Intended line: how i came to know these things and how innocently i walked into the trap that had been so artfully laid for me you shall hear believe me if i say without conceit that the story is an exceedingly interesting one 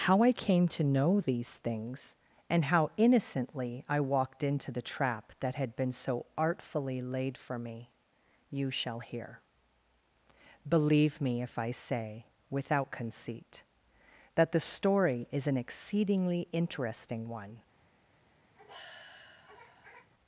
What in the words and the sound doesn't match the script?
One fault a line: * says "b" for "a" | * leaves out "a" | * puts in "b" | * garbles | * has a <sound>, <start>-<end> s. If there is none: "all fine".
* has a sigh, 18.5-20.1 s